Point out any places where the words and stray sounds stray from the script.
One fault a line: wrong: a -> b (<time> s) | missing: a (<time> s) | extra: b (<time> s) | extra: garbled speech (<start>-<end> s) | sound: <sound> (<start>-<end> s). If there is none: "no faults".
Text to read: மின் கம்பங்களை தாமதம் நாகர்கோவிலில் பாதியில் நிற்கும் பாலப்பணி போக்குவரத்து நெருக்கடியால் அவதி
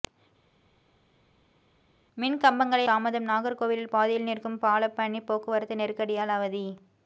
no faults